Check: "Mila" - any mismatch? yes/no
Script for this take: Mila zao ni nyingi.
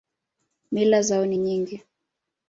no